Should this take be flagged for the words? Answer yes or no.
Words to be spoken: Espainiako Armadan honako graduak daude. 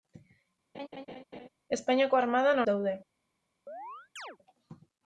yes